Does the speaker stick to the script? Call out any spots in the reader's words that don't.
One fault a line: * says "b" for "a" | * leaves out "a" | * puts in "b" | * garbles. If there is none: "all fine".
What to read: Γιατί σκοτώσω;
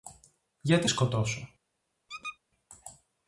all fine